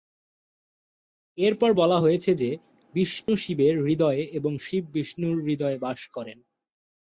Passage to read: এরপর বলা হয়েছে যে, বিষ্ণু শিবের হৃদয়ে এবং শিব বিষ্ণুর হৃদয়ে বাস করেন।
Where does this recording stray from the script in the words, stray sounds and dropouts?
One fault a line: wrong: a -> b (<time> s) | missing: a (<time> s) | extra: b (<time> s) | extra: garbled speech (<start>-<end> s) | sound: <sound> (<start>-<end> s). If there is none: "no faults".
sound: dropout (3.2-3.3 s)